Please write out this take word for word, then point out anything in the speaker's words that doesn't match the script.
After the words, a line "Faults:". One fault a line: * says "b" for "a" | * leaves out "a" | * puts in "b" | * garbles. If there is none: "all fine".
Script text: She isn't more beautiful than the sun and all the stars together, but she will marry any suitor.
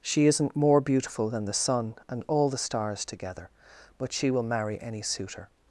She isn't more beautiful than the sun and all the stars together, but she will marry any suitor.
Faults:
all fine